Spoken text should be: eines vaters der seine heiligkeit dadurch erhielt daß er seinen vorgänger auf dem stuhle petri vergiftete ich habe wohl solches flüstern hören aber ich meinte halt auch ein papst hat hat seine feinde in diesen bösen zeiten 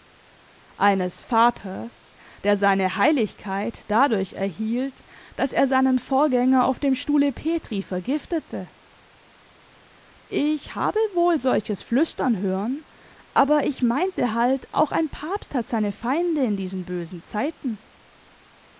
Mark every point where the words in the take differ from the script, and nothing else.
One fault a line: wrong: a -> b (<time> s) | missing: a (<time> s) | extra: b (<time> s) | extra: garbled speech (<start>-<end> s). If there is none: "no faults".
missing: hat (15.7 s)